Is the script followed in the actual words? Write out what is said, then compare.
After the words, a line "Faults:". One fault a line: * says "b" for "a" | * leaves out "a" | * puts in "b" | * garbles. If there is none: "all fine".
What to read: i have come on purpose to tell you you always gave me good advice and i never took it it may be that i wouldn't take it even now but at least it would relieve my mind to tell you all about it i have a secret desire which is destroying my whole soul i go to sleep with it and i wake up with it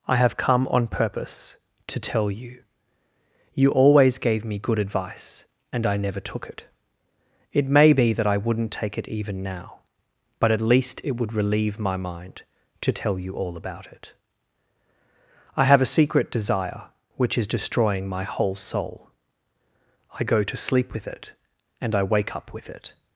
i have come on purpose to tell you you always gave me good advice and i never took it it may be that i wouldn't take it even now but at least it would relieve my mind to tell you all about it i have a secret desire which is destroying my whole soul i go to sleep with it and i wake up with it
Faults:
all fine